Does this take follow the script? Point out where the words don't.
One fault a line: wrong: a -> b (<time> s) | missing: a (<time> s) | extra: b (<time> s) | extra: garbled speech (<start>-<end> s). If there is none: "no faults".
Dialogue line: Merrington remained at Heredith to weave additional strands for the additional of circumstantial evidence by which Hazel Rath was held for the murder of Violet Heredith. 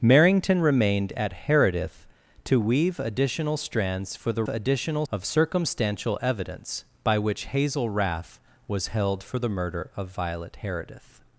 no faults